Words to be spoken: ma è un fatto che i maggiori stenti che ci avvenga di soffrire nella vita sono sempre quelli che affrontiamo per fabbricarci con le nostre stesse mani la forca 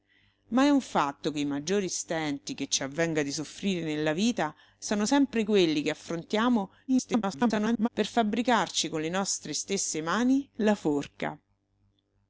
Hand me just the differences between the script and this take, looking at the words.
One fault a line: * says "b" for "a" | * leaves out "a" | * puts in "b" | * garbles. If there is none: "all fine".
* garbles